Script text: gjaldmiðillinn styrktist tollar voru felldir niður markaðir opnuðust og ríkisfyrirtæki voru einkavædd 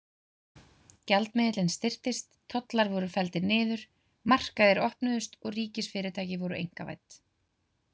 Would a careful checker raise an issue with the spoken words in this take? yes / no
no